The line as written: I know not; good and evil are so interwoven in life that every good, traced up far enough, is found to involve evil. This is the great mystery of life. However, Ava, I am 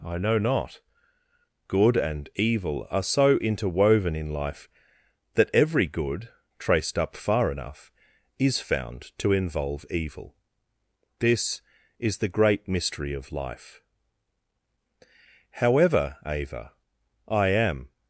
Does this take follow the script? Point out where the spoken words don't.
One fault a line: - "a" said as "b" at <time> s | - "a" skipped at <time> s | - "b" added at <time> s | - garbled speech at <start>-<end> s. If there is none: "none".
none